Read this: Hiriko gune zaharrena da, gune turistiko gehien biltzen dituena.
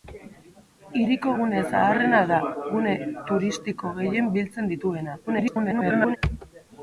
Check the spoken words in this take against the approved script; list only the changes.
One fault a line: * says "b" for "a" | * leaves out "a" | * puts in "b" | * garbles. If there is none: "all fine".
* garbles